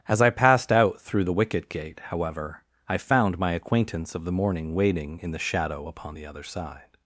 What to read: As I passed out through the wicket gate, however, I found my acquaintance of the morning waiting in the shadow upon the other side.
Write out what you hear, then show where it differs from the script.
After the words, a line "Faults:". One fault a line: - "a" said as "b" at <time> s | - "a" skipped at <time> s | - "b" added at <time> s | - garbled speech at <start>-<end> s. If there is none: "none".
As I passed out through the wicket gate, however, I found my acquaintance of the morning waiting in the shadow upon the other side.
Faults:
none